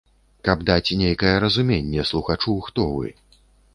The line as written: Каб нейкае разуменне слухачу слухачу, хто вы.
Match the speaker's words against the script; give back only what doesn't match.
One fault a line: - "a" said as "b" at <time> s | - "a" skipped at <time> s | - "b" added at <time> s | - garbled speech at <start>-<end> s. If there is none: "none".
- "даць" added at 0.7 s
- "слухачу" skipped at 2.6 s